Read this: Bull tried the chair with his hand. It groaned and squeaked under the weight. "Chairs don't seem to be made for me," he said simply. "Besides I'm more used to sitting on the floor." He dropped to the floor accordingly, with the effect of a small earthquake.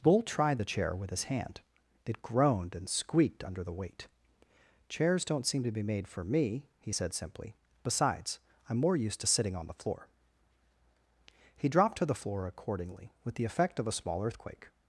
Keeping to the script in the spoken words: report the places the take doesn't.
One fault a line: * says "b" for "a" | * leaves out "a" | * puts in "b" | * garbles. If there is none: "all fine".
all fine